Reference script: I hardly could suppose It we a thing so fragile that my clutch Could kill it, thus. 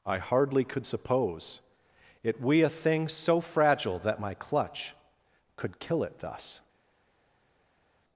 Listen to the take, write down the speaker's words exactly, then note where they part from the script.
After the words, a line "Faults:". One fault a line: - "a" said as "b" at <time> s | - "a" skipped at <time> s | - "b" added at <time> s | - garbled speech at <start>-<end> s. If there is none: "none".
I hardly could suppose It we a thing so fragile that my clutch Could kill it, thus.
Faults:
none